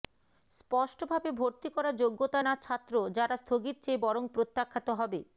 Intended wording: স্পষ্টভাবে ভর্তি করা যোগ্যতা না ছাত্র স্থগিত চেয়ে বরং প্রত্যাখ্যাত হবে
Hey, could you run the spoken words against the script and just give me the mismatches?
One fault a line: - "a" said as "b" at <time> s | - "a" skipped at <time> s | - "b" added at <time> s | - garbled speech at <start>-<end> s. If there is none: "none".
- "যারা" added at 3.2 s